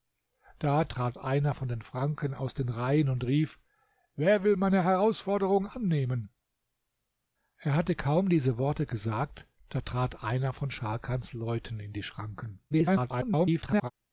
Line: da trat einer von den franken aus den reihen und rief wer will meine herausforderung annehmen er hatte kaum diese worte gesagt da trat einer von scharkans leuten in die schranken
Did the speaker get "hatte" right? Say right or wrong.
right